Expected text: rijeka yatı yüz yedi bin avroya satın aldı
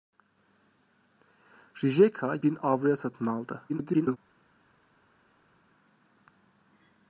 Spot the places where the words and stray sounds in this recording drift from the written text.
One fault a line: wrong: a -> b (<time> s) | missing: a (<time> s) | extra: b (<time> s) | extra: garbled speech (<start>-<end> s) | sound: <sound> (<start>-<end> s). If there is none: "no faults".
missing: yatı yüz yedi (2.4 s)
extra: garbled speech (3.7-4.2 s)